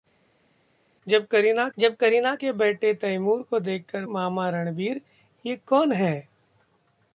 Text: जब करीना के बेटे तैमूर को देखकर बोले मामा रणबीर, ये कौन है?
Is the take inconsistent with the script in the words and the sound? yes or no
yes